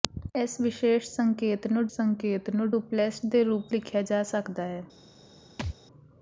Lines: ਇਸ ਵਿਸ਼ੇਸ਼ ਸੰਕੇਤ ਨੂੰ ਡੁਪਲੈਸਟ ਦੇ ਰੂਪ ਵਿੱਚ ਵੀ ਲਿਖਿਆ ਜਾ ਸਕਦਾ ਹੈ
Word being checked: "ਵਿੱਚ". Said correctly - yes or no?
no